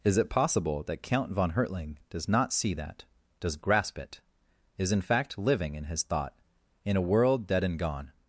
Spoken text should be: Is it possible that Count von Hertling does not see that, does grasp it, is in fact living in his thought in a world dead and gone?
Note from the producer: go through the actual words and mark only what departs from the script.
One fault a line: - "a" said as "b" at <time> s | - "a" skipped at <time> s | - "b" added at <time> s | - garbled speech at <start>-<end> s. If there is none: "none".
none